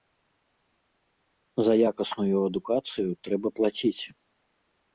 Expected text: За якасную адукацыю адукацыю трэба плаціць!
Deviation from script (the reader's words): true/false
true